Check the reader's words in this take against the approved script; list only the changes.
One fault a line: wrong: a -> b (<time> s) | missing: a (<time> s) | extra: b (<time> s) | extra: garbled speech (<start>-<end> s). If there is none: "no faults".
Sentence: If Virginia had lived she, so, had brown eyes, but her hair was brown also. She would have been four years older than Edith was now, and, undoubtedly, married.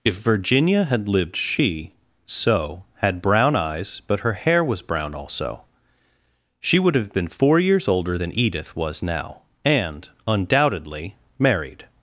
no faults